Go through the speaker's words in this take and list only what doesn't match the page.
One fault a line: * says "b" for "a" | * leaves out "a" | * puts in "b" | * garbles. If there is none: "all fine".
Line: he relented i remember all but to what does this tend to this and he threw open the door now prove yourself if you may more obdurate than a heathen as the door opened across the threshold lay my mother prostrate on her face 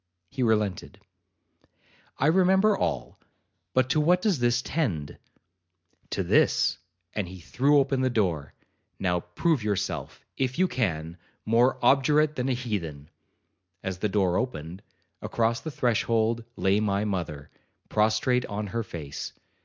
* says "can" for "may"